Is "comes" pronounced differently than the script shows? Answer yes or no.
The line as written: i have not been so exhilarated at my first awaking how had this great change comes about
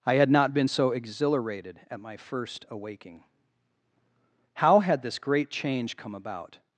yes